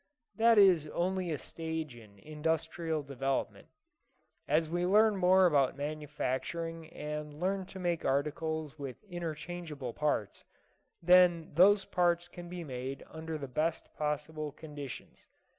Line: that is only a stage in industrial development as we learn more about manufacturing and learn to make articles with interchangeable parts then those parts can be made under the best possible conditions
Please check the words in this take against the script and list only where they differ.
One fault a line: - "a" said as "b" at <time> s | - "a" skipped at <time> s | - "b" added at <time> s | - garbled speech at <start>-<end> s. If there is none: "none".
none